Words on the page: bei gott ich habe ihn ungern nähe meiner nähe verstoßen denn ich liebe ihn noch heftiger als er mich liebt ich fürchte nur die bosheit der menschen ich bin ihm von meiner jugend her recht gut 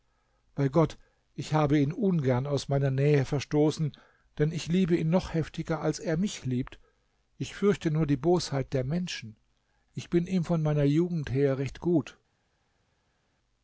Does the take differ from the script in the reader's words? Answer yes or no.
yes